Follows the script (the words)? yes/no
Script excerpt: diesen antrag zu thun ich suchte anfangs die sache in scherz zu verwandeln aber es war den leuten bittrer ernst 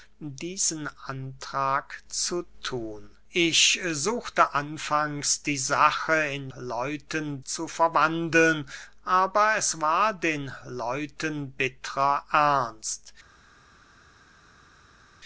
no